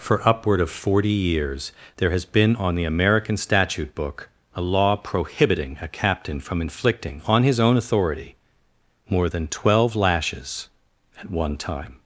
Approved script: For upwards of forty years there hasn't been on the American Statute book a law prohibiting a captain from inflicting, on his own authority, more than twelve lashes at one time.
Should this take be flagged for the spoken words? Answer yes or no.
yes